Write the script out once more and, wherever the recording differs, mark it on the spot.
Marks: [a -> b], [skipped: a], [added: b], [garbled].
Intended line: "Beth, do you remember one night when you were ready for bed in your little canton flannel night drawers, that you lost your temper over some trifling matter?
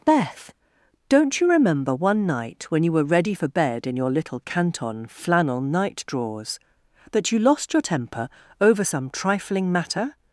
"Beth, [do -> don't] you remember one night when you were ready for bed in your little canton flannel night drawers, that you lost your temper over some trifling matter?